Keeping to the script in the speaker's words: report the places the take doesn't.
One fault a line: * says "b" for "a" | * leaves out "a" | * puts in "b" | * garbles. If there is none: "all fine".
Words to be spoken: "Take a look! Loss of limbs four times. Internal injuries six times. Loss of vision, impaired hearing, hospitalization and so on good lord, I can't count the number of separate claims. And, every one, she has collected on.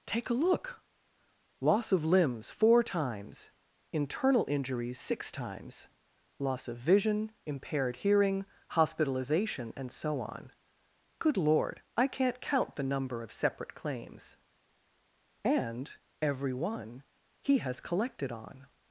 * says "he" for "she"